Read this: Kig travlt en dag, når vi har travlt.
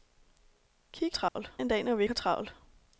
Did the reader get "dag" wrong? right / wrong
right